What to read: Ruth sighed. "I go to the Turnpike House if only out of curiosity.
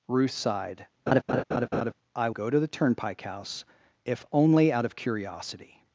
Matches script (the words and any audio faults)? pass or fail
fail